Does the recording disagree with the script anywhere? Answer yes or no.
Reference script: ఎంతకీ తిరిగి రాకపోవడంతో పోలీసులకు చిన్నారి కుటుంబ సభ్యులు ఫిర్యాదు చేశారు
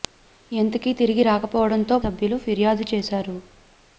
yes